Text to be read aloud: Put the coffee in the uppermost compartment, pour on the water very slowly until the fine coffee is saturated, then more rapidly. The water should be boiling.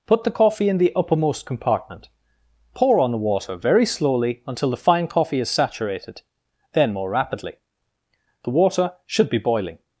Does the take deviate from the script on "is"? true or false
false